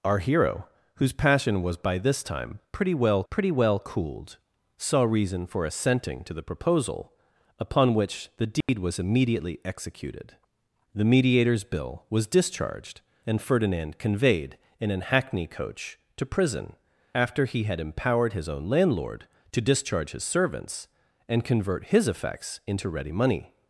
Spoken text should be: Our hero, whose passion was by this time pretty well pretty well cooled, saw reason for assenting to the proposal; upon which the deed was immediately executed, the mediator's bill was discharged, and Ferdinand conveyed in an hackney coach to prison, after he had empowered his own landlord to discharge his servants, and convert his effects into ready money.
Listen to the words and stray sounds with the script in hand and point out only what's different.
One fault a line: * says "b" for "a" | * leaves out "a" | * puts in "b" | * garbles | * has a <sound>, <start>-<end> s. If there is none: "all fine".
* has a dropout, 8.6-8.7 s